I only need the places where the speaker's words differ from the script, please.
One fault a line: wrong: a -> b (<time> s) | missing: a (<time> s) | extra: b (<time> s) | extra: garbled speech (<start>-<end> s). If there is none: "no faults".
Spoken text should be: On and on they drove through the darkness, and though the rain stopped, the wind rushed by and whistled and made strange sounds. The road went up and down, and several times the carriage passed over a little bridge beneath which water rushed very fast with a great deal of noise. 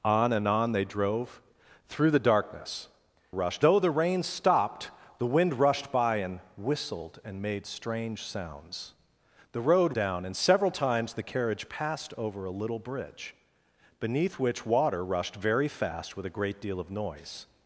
wrong: and -> rushed (3.3 s)
missing: went up and (9.9 s)